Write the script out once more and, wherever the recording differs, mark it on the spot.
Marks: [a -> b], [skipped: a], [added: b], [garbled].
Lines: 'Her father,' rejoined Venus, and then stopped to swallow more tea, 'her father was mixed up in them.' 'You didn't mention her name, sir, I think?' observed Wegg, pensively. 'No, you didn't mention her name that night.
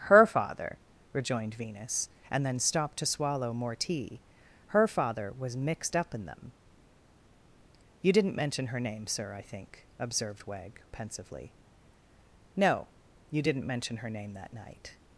'Her father,' rejoined Venus, and then stopped to swallow more tea, 'her father was mixed up in them.' 'You didn't mention her name, sir, I think?' observed Wegg, pensively. 'No, you didn't mention her name that night.